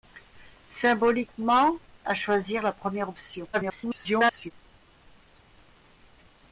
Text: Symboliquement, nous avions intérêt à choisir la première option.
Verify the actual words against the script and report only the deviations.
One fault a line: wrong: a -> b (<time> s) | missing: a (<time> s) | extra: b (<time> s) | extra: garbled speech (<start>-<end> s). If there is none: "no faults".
missing: nous avions intérêt (1.8 s)
extra: garbled speech (3.5-4.5 s)